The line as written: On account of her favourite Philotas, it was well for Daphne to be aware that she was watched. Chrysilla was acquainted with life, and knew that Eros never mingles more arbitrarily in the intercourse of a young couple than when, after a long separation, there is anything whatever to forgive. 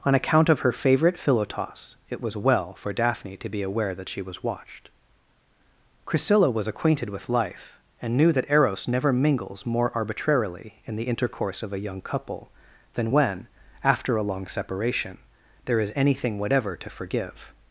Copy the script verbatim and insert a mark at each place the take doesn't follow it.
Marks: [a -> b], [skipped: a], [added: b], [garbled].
On account of her favourite Philotas, it was well for Daphne to be aware that she was watched. Chrysilla was acquainted with life, and knew that Eros never mingles more arbitrarily in the intercourse of a young couple than when, after a long separation, there is anything whatever to forgive.